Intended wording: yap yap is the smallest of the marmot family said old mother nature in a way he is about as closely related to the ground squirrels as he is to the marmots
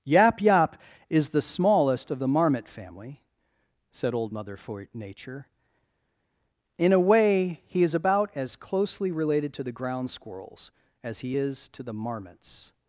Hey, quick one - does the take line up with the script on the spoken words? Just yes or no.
yes